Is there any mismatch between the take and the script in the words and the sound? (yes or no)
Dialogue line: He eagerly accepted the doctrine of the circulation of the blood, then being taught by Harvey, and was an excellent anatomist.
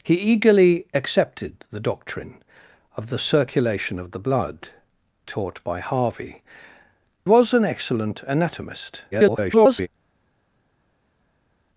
yes